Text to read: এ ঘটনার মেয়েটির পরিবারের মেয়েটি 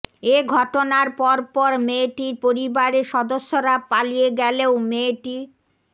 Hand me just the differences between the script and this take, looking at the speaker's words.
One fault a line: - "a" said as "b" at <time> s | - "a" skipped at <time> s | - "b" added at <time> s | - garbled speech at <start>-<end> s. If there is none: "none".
- "পরপর" added at 1.2 s
- "সদস্যরা পালিয়ে গেলেও" added at 3.1 s